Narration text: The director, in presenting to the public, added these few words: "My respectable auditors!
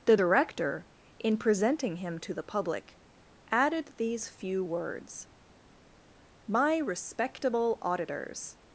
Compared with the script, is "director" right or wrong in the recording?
right